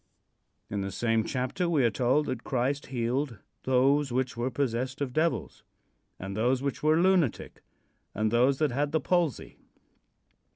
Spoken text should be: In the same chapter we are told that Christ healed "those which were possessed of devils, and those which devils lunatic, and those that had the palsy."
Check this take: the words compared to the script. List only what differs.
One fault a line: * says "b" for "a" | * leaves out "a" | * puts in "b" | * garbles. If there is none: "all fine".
* says "were" for "devils"